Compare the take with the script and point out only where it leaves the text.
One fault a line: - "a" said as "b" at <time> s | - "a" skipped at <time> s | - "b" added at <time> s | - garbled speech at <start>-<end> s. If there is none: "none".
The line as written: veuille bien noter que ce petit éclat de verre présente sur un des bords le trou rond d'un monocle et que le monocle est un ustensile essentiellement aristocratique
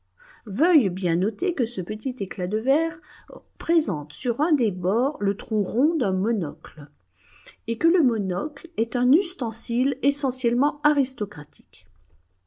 none